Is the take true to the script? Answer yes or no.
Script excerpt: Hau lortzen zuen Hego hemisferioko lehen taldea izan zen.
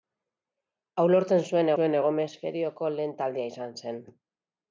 no